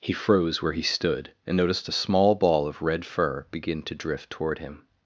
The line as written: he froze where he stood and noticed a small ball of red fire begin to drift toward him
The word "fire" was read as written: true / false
false